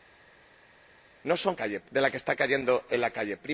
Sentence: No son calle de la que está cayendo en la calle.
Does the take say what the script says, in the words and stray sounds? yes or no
yes